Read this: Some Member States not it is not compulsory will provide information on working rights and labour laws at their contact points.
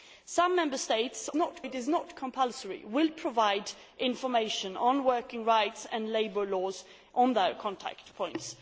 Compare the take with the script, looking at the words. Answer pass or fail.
pass